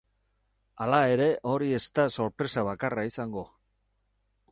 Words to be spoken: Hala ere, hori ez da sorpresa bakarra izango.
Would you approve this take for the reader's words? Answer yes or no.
yes